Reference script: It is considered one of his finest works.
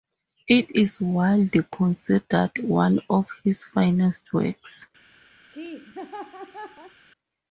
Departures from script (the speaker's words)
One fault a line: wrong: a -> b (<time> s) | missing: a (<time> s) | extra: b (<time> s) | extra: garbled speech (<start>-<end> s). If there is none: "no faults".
extra: widely (1.0 s)